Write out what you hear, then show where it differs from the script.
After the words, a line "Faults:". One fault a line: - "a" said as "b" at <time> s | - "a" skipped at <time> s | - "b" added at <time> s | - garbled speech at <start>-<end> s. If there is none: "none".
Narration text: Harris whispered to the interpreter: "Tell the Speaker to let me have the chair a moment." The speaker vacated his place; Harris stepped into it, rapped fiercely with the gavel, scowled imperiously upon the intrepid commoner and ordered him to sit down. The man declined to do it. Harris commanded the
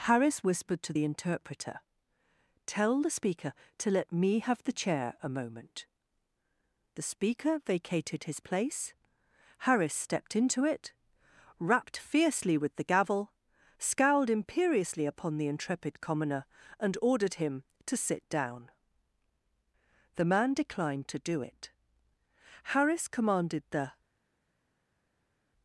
Harris whispered to the interpreter: "Tell the Speaker to let me have the chair a moment." The speaker vacated his place; Harris stepped into it, rapped fiercely with the gavel, scowled imperiously upon the intrepid commoner and ordered him to sit down. The man declined to do it. Harris commanded the
Faults:
none